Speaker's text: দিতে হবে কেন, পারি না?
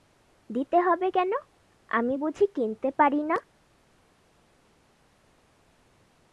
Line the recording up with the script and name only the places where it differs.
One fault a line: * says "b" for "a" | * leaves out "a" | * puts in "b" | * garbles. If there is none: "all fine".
* puts in "আমি বুঝি কিনতে"